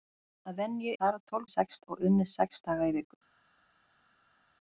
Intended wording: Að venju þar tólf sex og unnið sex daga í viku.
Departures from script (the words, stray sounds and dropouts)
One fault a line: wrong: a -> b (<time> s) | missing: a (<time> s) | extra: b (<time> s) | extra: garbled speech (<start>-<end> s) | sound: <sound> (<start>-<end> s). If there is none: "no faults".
no faults